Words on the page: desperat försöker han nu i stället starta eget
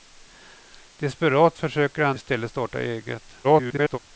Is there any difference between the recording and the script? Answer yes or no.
yes